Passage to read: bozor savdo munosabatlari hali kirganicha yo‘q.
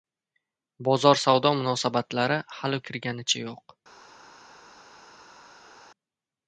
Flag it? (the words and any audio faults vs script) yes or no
no